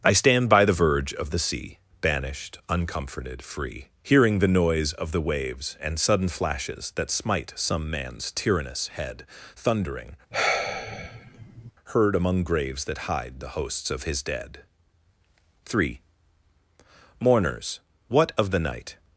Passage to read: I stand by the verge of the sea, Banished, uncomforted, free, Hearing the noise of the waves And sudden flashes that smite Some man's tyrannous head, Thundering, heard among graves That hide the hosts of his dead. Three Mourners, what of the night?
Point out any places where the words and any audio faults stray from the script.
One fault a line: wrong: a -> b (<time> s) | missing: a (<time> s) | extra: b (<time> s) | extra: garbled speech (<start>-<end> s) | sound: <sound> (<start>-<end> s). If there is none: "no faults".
sound: sigh (10.3-11.7 s)